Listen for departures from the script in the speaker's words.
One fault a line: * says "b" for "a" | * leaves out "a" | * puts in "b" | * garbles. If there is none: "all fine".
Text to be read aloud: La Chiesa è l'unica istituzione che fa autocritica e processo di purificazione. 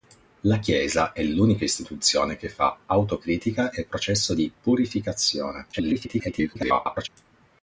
* garbles